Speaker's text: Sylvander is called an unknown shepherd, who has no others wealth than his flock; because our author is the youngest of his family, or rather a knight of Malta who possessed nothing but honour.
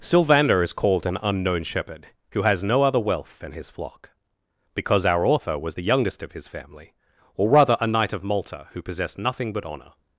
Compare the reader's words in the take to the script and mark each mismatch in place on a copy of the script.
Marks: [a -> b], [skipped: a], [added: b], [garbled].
Sylvander is called an unknown shepherd, who has no [others -> other] wealth than his flock; because our author [is -> was] the youngest of his family, or rather a knight of Malta who possessed nothing but honour.